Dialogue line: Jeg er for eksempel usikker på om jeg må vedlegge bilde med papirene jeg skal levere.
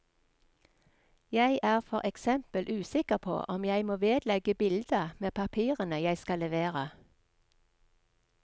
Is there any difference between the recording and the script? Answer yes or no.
no